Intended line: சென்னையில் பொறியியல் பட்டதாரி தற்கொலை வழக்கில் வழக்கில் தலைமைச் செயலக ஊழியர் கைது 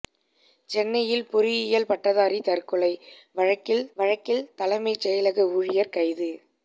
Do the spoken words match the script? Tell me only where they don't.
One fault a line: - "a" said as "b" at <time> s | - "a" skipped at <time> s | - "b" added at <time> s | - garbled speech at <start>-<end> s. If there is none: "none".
none